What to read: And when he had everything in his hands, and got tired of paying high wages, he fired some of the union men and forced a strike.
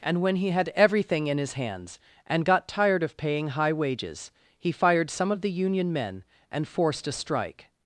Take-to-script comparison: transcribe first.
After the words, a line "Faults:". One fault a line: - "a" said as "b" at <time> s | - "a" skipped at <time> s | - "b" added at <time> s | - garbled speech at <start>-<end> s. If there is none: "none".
And when he had everything in his hands, and got tired of paying high wages, he fired some of the union men and forced a strike.
Faults:
none